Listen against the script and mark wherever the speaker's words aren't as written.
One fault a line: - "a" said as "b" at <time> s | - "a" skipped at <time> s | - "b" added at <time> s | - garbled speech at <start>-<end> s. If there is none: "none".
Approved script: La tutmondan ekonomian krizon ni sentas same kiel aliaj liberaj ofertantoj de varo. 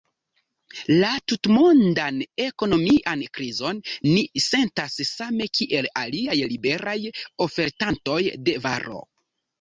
none